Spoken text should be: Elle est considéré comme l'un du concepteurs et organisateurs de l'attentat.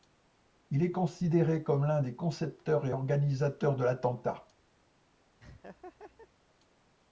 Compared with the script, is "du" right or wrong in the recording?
wrong